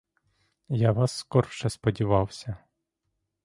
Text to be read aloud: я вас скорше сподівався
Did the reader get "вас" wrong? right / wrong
right